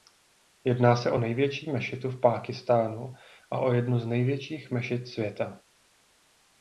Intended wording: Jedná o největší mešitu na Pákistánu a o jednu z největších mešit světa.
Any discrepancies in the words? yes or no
yes